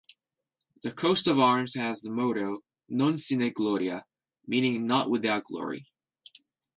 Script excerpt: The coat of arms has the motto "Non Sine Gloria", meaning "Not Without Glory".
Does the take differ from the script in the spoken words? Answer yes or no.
no